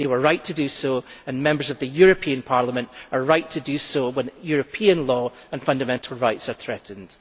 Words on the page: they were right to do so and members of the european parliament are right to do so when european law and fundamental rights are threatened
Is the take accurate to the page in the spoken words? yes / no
yes